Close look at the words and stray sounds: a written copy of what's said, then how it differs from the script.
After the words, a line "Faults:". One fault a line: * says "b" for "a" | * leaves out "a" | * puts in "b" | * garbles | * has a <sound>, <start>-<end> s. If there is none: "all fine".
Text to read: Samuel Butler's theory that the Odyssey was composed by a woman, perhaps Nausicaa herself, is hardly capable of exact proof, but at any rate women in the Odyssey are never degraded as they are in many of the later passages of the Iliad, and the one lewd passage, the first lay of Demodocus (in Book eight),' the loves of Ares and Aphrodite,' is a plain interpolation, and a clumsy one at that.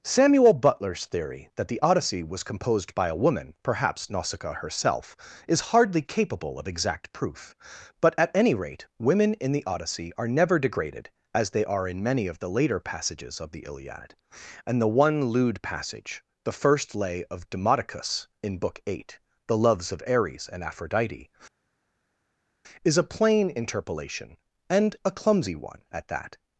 Samuel Butler's theory that the Odyssey was composed by a woman, perhaps Nausicaa herself, is hardly capable of exact proof, but at any rate women in the Odyssey are never degraded as they are in many of the later passages of the Iliad, and the one lewd passage, the first lay of Demodocus (in Book eight),' the loves of Ares and Aphrodite,' is a plain interpolation, and a clumsy one at that.
Faults:
all fine